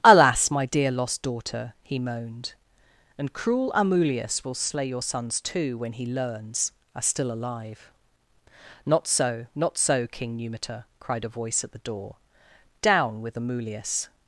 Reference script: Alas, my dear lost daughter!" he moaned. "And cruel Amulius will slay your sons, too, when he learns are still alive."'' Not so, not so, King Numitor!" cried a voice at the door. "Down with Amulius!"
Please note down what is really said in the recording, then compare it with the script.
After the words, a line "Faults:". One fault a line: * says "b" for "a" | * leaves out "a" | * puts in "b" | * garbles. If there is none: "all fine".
Alas, my dear lost daughter!" he moaned. "And cruel Amulius will slay your sons, too, when he learns are still alive."'' Not so, not so, King Numitor!" cried a voice at the door. "Down with Amulius!"
Faults:
all fine